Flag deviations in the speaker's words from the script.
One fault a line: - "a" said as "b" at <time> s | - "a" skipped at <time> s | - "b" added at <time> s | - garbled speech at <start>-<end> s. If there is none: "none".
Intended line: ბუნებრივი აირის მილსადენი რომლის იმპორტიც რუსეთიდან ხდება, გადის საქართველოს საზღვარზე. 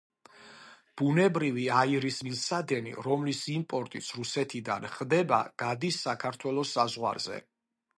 none